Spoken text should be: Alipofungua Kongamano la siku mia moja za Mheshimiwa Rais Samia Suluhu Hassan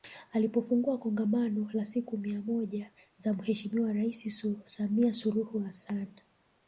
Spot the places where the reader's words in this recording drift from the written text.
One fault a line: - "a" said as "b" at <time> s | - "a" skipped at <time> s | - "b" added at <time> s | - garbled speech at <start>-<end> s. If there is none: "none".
none